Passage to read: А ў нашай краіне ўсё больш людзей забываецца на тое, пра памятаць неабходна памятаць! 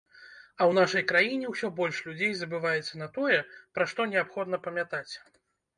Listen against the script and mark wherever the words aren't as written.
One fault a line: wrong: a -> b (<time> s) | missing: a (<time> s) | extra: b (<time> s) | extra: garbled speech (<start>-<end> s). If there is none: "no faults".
wrong: памятаць -> што (3.9 s)